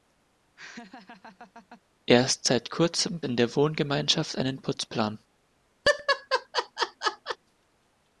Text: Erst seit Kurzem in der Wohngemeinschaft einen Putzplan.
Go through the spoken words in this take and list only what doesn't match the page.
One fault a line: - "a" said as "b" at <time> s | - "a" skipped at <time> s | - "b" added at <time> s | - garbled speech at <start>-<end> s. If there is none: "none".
none